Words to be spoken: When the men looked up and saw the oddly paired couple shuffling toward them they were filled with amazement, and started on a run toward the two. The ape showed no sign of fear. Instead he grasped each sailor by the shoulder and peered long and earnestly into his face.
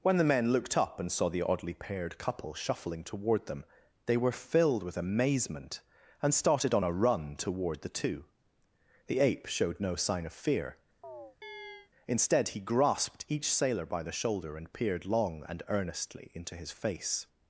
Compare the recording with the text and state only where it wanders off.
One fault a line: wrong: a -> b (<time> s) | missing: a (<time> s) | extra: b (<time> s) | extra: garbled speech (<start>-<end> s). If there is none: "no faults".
no faults